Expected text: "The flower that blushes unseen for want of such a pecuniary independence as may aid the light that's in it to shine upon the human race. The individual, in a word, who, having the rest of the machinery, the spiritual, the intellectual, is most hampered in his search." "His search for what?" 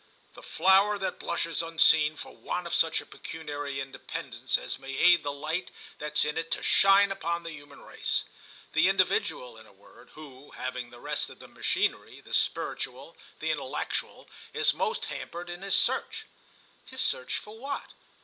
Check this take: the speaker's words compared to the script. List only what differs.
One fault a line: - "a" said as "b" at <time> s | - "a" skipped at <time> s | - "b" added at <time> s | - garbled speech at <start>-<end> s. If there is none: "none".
none